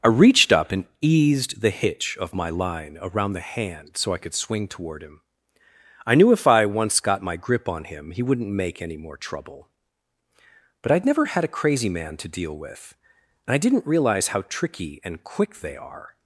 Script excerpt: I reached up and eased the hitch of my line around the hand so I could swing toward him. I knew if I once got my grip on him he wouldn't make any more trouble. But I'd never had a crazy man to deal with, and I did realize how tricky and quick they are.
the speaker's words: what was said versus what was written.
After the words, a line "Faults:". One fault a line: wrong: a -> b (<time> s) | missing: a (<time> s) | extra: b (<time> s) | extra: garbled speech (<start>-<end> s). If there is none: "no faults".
I reached up and eased the hitch of my line around the hand so I could swing toward him. I knew if I once got my grip on him he wouldn't make any more trouble. But I'd never had a crazy man to deal with, and I didn't realize how tricky and quick they are.
Faults:
wrong: did -> didn't (13.6 s)